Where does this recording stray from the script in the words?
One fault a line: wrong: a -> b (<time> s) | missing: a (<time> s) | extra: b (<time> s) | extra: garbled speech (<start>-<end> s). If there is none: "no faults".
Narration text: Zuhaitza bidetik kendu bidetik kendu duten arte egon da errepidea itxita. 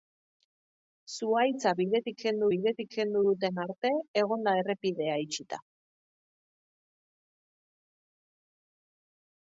no faults